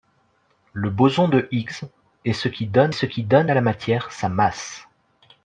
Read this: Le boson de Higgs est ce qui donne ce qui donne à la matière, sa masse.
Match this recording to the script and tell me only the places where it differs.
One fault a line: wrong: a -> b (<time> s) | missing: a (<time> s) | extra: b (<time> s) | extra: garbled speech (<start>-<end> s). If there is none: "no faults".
no faults